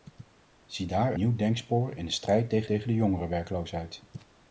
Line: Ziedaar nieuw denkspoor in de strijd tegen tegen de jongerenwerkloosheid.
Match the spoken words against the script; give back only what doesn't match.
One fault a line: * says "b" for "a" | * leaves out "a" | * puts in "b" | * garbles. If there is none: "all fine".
all fine